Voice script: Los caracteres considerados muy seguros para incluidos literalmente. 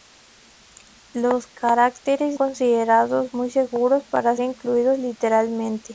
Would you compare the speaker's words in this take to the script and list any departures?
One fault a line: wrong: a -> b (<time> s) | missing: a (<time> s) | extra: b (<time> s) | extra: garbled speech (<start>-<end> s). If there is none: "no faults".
no faults